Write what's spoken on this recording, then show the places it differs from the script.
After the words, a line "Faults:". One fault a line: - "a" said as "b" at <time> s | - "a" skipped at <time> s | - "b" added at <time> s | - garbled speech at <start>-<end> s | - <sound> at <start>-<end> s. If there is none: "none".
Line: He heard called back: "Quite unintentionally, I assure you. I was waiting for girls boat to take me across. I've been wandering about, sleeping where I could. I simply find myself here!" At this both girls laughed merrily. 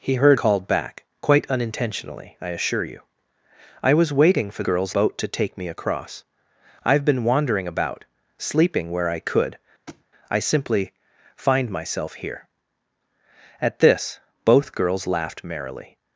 He heard called back: "Quite unintentionally, I assure you. I was waiting for girls boat to take me across. I've been wandering about, sleeping where I could. I simply find myself here!" At this both girls laughed merrily.
Faults:
- thud at 9.9-10.1 s